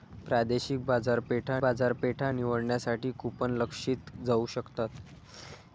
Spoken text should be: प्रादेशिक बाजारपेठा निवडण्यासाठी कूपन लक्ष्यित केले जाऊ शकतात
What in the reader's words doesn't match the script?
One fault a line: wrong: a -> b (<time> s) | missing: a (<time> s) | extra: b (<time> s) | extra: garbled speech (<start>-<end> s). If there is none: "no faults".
extra: बाजारपेठा (1.6 s)
missing: केले (4.1 s)